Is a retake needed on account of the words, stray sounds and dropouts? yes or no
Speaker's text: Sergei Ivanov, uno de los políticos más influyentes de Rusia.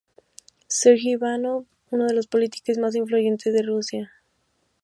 no